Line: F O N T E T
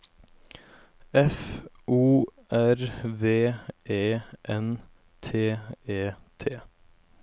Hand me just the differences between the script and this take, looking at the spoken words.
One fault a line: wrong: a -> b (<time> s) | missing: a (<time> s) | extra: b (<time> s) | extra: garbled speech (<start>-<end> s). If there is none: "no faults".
extra: R V E (2.5 s)